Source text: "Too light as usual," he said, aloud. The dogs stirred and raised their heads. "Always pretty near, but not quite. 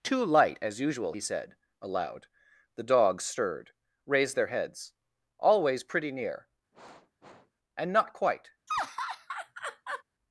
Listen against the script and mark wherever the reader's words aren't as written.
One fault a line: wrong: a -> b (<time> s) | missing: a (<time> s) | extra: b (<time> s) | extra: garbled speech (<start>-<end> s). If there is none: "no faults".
missing: and (3.7 s)
wrong: but -> and (7.8 s)